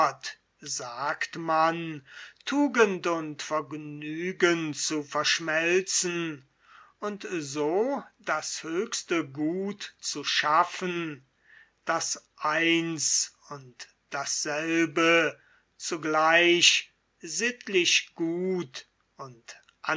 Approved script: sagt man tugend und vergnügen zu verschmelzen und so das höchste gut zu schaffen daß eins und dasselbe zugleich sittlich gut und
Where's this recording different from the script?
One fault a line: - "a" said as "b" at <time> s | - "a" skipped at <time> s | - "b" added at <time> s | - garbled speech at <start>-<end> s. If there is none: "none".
none